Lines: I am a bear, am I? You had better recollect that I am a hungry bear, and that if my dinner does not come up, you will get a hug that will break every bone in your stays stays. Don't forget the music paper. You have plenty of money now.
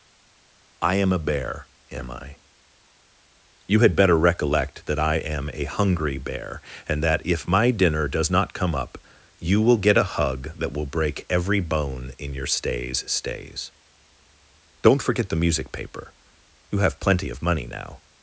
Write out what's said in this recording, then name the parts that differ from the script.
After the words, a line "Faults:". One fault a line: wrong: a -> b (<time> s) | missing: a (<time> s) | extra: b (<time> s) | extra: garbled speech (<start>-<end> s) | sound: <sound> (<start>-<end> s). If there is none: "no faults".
I am a bear, am I? You had better recollect that I am a hungry bear, and that if my dinner does not come up, you will get a hug that will break every bone in your stays stays. Don't forget the music paper. You have plenty of money now.
Faults:
no faults